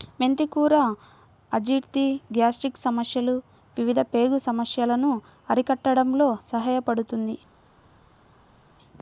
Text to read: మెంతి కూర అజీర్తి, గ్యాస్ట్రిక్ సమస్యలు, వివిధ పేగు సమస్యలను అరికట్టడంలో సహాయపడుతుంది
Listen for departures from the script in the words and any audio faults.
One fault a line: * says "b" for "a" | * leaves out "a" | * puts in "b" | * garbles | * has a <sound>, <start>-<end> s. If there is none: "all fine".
all fine